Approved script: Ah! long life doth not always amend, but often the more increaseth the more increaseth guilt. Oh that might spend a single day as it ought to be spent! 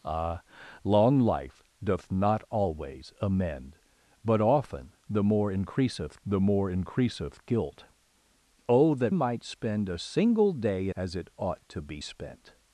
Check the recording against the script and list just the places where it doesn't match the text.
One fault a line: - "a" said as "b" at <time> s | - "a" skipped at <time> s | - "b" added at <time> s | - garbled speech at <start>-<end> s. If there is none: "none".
none